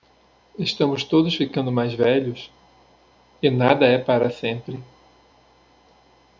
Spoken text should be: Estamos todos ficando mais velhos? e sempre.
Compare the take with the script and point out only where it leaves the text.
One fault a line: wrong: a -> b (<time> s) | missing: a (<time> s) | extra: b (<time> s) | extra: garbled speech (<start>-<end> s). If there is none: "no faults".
extra: nada é para (3.5 s)